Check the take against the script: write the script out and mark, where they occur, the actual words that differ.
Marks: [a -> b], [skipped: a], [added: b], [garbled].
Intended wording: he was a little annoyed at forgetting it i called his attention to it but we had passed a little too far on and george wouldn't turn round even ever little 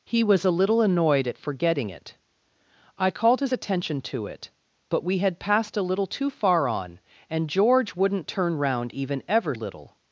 he was a little annoyed at forgetting it i called his attention to it but we had passed a little too far on and george wouldn't turn round even ever little